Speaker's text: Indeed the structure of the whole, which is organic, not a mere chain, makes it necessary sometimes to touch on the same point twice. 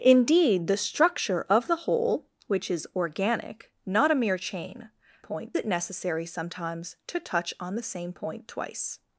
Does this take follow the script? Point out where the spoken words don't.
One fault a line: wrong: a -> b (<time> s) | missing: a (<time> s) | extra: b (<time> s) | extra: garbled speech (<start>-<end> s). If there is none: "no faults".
wrong: makes -> point (5.2 s)